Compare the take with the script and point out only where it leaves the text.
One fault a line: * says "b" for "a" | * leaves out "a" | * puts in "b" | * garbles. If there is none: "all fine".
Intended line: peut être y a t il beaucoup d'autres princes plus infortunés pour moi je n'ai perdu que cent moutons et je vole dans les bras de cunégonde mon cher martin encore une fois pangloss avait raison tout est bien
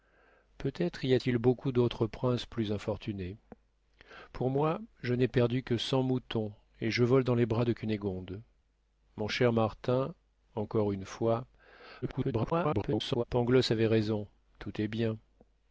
* garbles